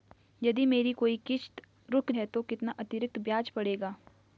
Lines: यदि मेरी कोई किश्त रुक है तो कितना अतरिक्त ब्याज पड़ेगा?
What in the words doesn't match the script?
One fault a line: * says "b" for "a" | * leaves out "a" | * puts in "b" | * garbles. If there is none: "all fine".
all fine